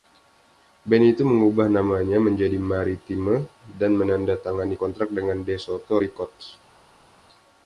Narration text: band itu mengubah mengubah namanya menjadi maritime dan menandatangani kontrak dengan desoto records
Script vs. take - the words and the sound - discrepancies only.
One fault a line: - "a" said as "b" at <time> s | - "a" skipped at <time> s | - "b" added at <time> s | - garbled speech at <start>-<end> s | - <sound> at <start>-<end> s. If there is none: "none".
- "mengubah" skipped at 1.7 s